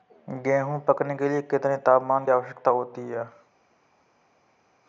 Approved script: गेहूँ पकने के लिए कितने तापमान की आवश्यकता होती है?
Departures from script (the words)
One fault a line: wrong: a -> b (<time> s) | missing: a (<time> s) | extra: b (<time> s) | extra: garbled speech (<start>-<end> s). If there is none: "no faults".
missing: की (2.2 s)